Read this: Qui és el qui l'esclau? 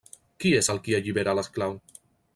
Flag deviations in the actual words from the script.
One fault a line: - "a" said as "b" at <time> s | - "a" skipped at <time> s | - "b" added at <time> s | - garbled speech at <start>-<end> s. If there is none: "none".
- "allibera" added at 1.0 s